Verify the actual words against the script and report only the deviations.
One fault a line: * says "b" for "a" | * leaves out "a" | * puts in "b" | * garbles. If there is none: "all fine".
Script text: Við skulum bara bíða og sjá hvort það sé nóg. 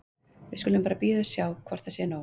all fine